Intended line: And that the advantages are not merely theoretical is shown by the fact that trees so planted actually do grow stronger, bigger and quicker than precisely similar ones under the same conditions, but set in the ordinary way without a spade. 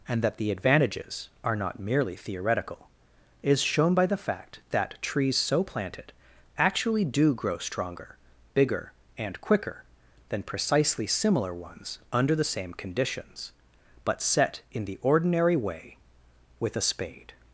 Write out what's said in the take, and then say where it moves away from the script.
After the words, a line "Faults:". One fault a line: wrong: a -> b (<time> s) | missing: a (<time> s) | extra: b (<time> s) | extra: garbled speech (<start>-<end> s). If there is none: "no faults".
And that the advantages are not merely theoretical is shown by the fact that trees so planted actually do grow stronger, bigger and quicker than precisely similar ones under the same conditions, but set in the ordinary way with a spade.
Faults:
wrong: without -> with (16.6 s)